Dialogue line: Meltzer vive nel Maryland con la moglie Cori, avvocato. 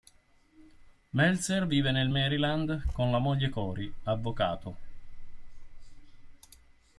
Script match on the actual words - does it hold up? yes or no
yes